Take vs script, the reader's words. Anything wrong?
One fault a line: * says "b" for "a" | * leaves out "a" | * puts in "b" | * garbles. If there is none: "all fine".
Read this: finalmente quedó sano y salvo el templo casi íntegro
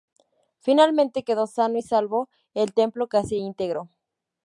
all fine